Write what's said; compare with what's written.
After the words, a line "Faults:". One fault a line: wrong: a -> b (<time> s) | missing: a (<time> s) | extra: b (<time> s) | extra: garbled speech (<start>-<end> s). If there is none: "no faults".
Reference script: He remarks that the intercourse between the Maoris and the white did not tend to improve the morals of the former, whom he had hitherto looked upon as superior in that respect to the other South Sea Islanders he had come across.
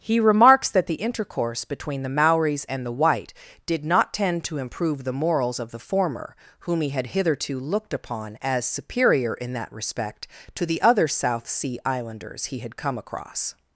He remarks that the intercourse between the Maoris and the white did not tend to improve the morals of the former, whom he had hitherto looked upon as superior in that respect to the other South Sea Islanders he had come across.
Faults:
no faults